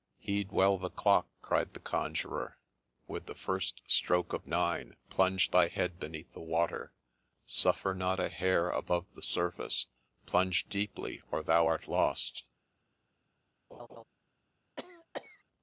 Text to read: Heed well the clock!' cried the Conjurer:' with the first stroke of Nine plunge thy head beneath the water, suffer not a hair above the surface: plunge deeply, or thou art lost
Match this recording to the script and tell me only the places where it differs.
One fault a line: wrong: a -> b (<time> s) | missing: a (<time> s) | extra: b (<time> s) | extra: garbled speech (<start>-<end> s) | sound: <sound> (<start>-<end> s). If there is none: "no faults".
sound: laugh (13.7-14.0 s)
sound: cough (14.8-15.4 s)